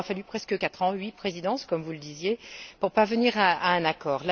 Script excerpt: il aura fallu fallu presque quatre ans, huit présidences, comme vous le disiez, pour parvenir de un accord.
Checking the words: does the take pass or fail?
fail